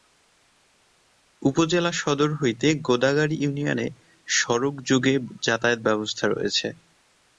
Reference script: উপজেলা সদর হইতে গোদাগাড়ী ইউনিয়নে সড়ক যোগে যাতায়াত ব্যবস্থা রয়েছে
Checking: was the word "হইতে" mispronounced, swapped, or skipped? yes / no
no